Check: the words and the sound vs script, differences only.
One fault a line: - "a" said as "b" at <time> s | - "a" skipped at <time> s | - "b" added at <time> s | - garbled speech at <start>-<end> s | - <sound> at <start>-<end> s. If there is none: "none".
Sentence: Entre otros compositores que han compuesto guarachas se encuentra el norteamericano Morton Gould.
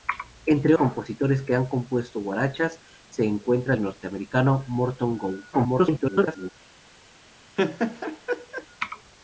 - "otros" skipped at 0.7 s
- garbled speech at 5.5-6.5 s
- laugh at 7.6-8.7 s